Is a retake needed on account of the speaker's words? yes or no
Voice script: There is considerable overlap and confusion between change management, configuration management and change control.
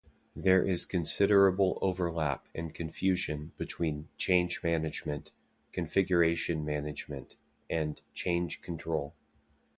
no